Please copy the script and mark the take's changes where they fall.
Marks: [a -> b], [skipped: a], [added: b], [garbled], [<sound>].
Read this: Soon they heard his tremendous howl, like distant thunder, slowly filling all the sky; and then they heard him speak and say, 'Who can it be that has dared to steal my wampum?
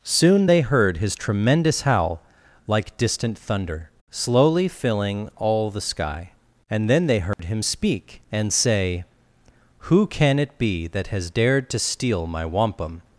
Soon they heard his tremendous howl, like distant thunder, slowly filling all the sky; and then they heard [dropout] him speak and say, 'Who can it be that has dared to steal my wampum?